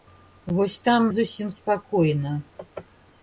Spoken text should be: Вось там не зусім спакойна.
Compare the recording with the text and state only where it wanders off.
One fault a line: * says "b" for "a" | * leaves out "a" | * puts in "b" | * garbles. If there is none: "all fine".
* leaves out "не"